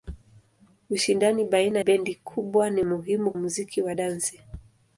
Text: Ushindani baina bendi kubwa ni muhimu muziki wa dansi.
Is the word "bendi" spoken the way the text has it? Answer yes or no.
yes